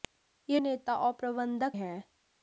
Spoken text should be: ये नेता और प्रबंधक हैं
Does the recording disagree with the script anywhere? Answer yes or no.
no